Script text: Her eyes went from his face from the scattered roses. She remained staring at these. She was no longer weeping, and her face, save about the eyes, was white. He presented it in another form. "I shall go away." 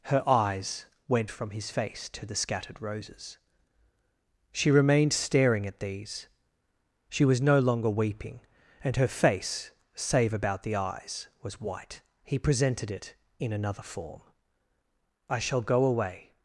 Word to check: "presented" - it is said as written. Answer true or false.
true